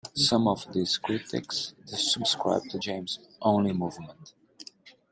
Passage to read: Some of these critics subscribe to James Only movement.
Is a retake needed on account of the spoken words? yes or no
no